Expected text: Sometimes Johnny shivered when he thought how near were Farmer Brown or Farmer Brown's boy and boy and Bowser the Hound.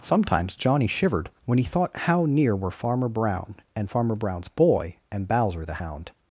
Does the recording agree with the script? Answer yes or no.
no